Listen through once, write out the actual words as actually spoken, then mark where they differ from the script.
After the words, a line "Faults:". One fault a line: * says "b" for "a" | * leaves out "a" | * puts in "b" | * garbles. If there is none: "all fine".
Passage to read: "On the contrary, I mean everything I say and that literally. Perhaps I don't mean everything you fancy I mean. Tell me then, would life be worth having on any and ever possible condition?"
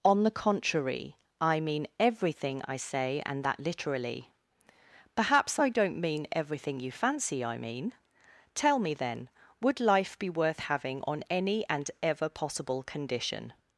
"On the contrary, I mean everything I say and that literally. Perhaps I don't mean everything you fancy I mean. Tell me then, would life be worth having on any and ever possible condition?"
Faults:
all fine